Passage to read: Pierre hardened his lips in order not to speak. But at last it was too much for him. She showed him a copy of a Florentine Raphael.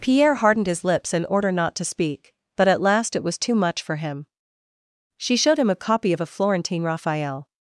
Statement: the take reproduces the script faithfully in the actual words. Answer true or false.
true